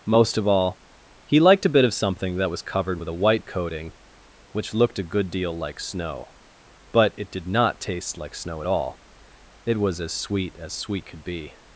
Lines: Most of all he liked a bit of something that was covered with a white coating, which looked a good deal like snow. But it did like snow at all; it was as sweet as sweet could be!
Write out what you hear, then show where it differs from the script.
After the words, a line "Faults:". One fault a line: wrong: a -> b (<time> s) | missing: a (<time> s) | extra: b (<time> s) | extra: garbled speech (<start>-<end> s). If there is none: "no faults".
Most of all he liked a bit of something that was covered with a white coating, which looked a good deal like snow. But it did not taste like snow at all; it was as sweet as sweet could be!
Faults:
extra: not taste (7.5 s)